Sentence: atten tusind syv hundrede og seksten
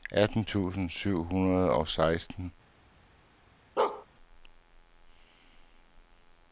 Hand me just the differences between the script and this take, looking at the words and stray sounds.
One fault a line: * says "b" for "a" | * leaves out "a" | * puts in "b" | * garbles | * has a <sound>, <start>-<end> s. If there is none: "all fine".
* has a bark, 3.8-4.1 s